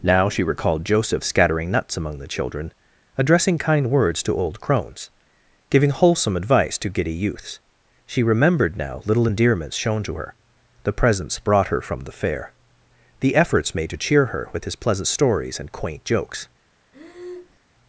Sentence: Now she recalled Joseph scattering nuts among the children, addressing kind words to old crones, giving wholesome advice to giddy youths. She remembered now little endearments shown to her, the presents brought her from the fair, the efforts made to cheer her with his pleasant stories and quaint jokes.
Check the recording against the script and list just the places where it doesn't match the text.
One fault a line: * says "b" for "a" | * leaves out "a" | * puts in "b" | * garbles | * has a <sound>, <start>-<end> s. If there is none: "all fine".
* has a breath, 16.9-17.6 s